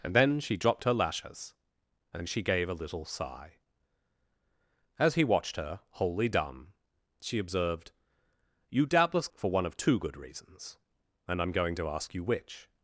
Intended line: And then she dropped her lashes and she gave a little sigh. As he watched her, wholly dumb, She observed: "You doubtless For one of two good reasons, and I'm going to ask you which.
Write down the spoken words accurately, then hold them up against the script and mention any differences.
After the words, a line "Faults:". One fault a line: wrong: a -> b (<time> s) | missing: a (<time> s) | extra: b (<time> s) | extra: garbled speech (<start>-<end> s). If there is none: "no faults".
And then she dropped her lashes and she gave a little sigh. As he watched her, wholly dumb, She observed: "You doubtless For one of two good reasons, and I'm going to ask you which.
Faults:
no faults